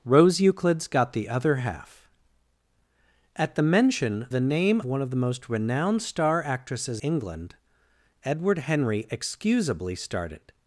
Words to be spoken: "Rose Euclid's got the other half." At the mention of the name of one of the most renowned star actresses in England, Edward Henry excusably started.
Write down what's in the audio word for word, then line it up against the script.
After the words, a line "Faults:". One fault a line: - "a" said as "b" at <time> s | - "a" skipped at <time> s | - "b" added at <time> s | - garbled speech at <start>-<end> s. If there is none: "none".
"Rose Euclid's got the other half." At the mention the name one of the most renowned star actresses England, Edward Henry excusably started.
Faults:
- "of" skipped at 4.3 s
- "of" skipped at 4.8 s
- "in" skipped at 7.0 s